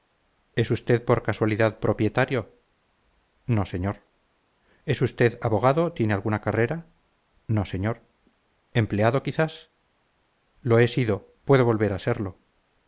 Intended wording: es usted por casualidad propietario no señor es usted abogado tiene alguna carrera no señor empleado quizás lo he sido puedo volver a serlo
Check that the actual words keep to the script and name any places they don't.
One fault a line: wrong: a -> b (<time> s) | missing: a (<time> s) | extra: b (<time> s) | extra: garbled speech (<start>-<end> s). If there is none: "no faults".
no faults